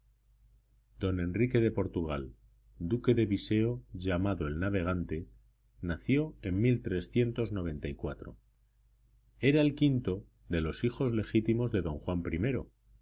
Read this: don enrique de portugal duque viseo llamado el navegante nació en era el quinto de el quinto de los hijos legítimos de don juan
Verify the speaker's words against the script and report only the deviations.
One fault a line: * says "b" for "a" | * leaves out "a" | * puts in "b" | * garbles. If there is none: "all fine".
* puts in "de"
* leaves out "el quinto de"